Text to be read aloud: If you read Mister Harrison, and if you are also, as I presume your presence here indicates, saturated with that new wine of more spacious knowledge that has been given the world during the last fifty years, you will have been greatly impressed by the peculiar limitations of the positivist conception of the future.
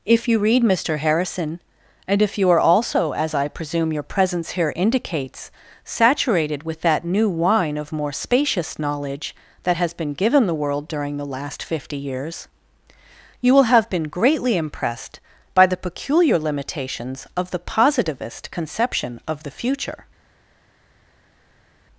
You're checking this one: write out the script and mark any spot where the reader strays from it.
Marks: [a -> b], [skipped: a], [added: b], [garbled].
If you read Mister Harrison, and if you are also, as I presume your presence here indicates, saturated with that new wine of more spacious knowledge that has been given the world during the last fifty years, you will have been greatly impressed by the peculiar limitations of the positivist conception of the future.